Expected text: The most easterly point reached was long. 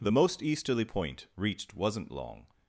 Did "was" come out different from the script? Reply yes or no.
yes